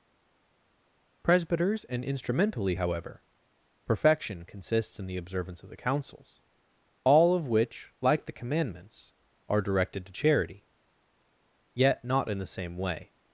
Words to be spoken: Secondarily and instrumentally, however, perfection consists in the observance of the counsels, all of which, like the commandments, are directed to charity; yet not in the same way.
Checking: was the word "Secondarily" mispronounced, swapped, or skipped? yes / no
yes